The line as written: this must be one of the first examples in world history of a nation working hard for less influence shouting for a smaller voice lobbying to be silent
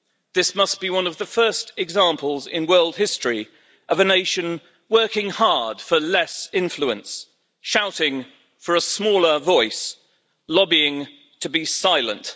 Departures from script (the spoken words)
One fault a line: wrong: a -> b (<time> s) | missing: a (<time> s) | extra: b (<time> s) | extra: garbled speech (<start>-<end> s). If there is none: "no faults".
no faults